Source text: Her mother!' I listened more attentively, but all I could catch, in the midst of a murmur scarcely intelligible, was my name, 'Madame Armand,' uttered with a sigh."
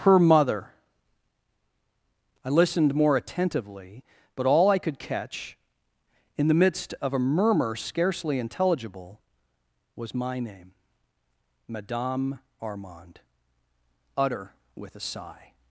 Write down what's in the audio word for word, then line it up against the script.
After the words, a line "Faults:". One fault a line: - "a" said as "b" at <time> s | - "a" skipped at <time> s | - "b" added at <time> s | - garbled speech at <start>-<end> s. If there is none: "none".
Her mother!' I listened more attentively, but all I could catch, in the midst of a murmur scarcely intelligible, was my name, 'Madame Armand,' utter with a sigh."
Faults:
- "uttered" said as "utter" at 14.2 s